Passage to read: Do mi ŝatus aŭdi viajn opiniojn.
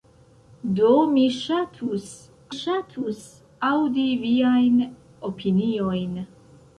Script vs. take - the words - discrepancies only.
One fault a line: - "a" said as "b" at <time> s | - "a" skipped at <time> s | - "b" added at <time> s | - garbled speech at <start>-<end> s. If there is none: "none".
- "ŝatus" added at 2.5 s